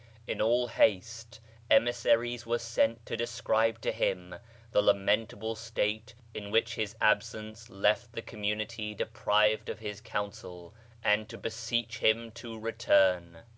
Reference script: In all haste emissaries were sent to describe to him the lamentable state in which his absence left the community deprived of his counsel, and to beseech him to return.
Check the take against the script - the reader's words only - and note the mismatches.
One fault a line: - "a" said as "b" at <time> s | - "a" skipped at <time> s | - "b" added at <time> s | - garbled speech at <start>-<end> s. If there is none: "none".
none